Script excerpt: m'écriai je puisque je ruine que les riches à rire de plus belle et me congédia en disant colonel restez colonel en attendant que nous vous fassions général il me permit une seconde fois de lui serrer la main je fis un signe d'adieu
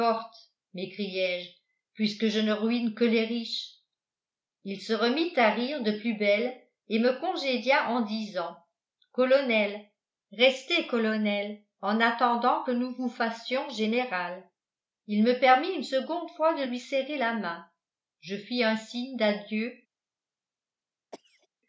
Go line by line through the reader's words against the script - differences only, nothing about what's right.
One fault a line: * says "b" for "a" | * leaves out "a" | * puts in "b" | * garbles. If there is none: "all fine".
* puts in "ne"
* puts in "il se remit"